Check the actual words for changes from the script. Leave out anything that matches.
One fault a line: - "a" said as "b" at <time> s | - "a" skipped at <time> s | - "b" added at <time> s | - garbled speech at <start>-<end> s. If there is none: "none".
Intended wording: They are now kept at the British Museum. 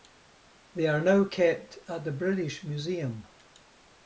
none